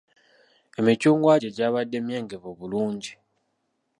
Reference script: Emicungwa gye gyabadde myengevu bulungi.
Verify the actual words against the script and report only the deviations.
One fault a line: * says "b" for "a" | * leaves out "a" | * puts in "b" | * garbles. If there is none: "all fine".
all fine